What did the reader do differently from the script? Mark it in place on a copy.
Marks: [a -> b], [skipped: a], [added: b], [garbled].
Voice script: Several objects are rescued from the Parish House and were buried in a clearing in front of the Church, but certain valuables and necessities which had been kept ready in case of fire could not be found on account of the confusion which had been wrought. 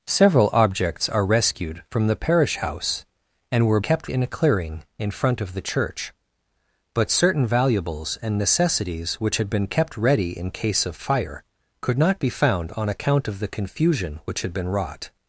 Several objects are rescued from the Parish House and were [buried -> kept] in a clearing in front of the Church, but certain valuables and necessities which had been kept ready in case of fire could not be found on account of the confusion which had been wrought.